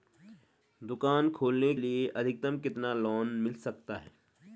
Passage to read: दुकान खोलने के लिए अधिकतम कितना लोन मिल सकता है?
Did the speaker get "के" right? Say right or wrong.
wrong